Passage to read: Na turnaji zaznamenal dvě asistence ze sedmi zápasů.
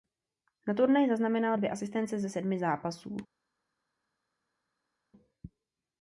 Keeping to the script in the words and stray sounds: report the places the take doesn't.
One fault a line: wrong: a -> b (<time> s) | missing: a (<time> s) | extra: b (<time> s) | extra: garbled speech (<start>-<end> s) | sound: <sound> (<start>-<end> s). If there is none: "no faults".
no faults